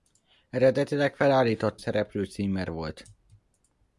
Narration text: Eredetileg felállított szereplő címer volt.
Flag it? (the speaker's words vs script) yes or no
no